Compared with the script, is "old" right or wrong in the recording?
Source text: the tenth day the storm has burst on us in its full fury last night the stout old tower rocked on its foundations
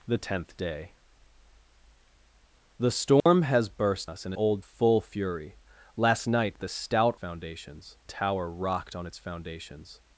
wrong